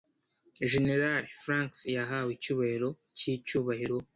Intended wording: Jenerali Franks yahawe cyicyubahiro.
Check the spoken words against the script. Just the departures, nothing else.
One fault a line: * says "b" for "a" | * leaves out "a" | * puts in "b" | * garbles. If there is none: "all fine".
* puts in "icyubahiro"